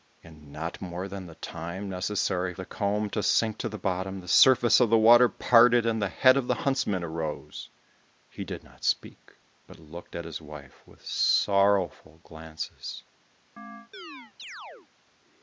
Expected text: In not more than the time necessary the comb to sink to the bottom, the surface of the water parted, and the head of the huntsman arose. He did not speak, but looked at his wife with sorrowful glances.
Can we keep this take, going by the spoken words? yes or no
yes